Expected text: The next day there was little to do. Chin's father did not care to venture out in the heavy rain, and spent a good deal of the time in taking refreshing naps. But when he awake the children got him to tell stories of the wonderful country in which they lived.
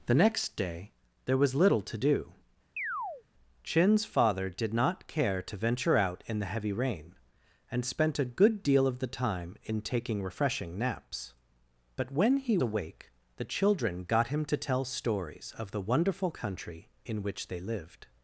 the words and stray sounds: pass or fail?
fail